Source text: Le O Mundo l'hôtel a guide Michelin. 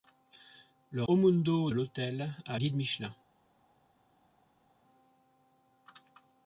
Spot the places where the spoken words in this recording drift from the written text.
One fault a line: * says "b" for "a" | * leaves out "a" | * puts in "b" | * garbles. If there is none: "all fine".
all fine